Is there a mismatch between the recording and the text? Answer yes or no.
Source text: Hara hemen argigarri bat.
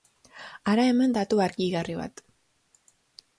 yes